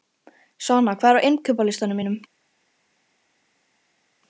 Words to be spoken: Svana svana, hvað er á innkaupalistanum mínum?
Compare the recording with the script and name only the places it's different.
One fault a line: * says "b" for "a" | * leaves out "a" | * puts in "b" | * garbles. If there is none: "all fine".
* leaves out "svana"